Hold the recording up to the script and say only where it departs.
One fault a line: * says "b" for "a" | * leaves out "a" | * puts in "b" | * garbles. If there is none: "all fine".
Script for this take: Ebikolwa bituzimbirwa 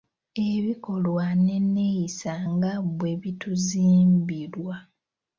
* puts in "n'enneeyisa nga bwe"